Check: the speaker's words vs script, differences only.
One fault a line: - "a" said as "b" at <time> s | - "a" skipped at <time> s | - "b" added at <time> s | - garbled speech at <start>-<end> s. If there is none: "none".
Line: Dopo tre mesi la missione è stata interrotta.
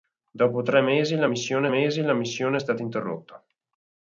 - "mesi la missione" added at 1.7 s